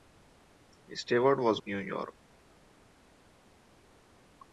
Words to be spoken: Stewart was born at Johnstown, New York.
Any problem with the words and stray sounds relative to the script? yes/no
yes